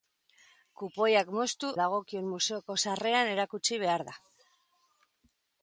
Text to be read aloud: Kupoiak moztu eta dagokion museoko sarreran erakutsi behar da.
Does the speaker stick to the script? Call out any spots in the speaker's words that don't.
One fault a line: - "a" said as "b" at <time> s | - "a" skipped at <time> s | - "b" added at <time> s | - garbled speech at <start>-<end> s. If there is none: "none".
- "eta" skipped at 1.7 s